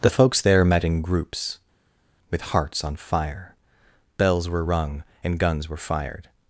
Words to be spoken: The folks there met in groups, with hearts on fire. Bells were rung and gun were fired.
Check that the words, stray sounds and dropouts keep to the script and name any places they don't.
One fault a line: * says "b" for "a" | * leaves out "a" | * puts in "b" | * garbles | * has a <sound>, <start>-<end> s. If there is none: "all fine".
* says "guns" for "gun"